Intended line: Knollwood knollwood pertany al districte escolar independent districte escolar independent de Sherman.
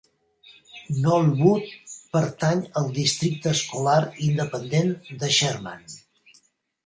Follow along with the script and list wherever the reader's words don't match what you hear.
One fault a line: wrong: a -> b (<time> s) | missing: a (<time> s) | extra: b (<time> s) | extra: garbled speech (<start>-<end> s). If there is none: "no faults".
missing: knollwood (1.7 s)
missing: districte escolar independent (4.9 s)